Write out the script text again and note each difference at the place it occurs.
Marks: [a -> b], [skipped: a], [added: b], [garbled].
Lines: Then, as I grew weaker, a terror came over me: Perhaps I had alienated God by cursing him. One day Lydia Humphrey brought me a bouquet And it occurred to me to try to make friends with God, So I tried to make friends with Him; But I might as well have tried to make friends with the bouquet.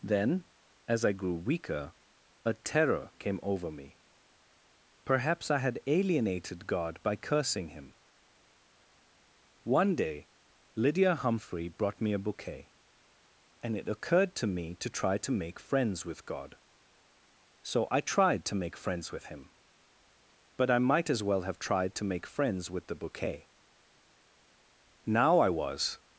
Then, as I grew weaker, a terror came over me: Perhaps I had alienated God by cursing him. One day Lydia Humphrey brought me a bouquet And it occurred to me to try to make friends with God, So I tried to make friends with Him; But I might as well have tried to make friends with the bouquet. [added: Now I was]